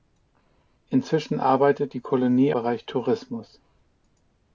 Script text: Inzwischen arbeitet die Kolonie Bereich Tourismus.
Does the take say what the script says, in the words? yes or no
yes